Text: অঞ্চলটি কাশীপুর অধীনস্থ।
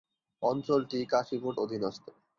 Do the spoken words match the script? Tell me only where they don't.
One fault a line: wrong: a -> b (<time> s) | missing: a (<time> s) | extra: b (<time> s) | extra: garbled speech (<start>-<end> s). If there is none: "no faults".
no faults